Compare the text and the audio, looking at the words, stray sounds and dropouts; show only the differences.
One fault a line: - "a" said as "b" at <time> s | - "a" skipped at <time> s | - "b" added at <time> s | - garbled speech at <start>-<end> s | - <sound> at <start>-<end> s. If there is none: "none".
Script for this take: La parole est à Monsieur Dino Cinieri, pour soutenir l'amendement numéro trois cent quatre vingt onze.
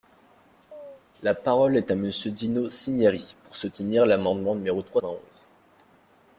- chirp at 0.7-1.0 s
- "cent quatre" skipped at 5.0 s